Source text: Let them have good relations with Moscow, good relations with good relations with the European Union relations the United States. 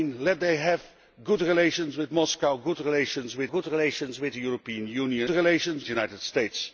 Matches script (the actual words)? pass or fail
pass